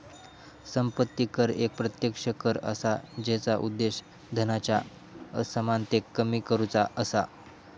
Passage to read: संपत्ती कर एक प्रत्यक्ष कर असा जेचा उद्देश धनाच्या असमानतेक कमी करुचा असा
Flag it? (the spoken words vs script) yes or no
no